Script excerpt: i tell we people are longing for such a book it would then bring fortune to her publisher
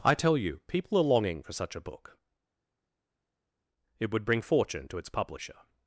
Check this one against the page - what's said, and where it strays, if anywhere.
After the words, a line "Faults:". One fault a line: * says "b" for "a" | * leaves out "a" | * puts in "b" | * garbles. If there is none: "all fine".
i tell you people are longing for such a book it would bring fortune to its publisher
Faults:
* says "you" for "we"
* leaves out "then"
* says "its" for "her"